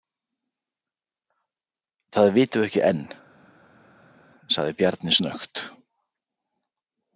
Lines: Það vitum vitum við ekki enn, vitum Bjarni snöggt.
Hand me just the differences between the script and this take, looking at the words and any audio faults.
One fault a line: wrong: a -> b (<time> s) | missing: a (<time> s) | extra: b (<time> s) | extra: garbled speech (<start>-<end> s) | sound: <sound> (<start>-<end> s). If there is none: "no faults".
missing: vitum (2.6 s)
wrong: vitum -> sagði (4.6 s)